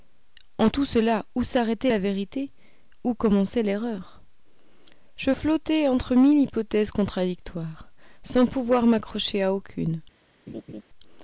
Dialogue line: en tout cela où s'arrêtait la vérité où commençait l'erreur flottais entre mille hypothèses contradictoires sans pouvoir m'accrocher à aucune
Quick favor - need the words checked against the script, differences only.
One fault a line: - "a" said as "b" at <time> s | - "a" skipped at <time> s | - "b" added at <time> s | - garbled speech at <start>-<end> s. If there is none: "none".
- "je" added at 5.2 s